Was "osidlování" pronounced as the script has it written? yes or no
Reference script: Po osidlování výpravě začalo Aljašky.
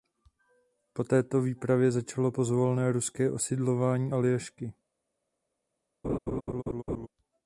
no